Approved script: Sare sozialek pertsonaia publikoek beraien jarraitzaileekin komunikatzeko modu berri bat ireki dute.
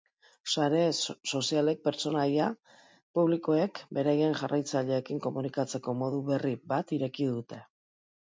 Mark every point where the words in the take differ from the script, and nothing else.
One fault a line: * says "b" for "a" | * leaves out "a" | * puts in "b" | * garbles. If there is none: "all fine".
all fine